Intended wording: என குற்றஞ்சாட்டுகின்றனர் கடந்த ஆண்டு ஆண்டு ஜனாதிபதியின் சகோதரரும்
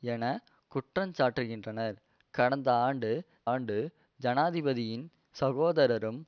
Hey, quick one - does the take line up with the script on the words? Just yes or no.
yes